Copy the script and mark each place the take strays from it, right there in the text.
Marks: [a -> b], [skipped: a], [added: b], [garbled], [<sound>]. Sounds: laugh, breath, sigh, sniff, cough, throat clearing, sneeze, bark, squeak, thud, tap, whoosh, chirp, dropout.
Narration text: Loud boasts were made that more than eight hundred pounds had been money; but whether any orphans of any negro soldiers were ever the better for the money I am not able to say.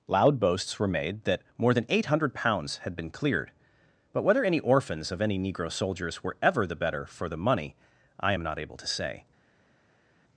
Loud boasts were made that more than eight hundred pounds had been [money; -> cleared] but whether any orphans of any negro soldiers were ever the better for the money I am not able to say.